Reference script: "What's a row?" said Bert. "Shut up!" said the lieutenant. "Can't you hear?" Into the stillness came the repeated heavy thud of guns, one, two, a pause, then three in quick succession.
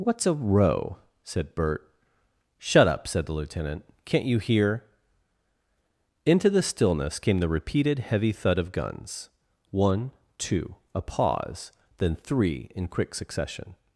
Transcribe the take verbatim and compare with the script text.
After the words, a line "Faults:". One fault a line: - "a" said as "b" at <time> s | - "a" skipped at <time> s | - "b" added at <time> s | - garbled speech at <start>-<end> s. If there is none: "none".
"What's a row?" said Bert. "Shut up!" said the lieutenant. "Can't you hear?" Into the stillness came the repeated heavy thud of guns, one, two, a pause, then three in quick succession.
Faults:
none